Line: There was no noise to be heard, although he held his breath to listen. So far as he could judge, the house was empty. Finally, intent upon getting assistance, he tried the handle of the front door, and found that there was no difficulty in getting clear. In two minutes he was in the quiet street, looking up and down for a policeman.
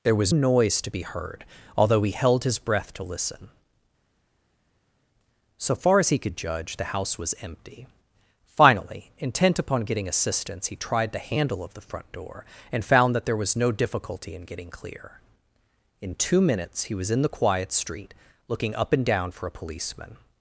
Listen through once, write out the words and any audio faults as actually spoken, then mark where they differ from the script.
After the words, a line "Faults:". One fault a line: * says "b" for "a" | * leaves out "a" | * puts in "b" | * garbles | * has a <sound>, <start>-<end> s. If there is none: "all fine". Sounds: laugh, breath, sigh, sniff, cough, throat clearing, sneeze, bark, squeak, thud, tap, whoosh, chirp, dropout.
There was noise to be heard, although he held his breath to listen. So far as he could judge, the house was empty. Finally, intent upon getting assistance, he tried the handle of the front door, and found that there was no difficulty in getting clear. In two minutes he was in the quiet street, looking up and down for a policeman.
Faults:
* leaves out "no"